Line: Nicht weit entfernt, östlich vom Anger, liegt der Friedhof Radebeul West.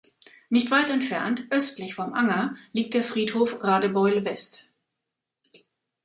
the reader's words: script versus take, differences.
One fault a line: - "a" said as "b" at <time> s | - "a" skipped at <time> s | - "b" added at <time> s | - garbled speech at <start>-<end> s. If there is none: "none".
none